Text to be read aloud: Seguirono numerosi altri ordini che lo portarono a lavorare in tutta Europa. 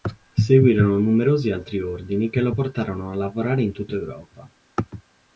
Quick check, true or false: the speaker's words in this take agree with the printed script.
true